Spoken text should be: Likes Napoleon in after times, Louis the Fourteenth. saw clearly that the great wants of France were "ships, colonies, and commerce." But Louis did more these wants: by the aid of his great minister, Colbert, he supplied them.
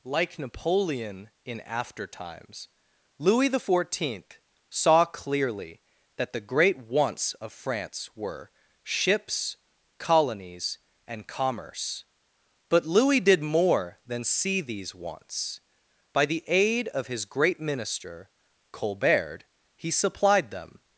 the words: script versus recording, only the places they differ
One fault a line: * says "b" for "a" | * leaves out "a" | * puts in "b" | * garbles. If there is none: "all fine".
* says "Like" for "Likes"
* puts in "than see"